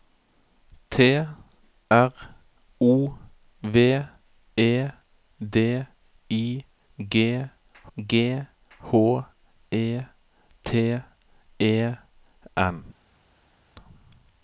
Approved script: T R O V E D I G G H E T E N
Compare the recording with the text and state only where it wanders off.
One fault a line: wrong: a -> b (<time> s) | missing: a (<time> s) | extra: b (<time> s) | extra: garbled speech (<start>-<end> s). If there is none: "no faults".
no faults